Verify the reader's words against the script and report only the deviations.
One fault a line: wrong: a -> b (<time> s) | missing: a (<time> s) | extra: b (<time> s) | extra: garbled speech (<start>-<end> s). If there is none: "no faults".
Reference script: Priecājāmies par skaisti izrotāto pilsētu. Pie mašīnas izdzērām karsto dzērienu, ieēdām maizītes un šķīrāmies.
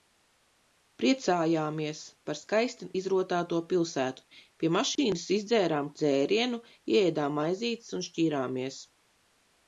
missing: karsto (5.9 s)